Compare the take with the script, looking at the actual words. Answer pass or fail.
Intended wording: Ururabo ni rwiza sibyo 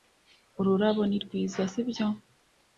pass